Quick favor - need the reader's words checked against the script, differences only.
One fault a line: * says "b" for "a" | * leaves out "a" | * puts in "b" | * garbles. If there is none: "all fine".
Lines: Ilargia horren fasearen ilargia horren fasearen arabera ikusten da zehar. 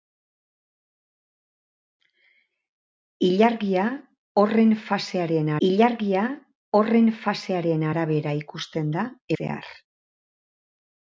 all fine